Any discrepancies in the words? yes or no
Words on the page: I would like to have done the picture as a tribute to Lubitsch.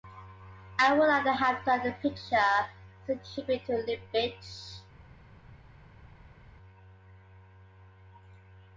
no